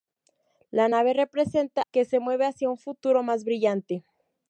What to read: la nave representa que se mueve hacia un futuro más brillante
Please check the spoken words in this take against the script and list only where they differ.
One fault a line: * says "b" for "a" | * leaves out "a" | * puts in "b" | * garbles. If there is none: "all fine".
all fine